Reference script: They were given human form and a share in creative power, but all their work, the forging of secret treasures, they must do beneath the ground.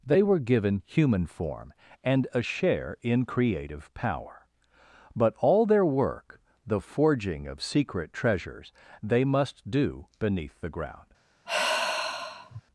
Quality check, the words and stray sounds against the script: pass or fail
fail